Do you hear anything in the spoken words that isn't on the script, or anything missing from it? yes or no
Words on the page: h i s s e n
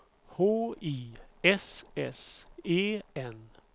no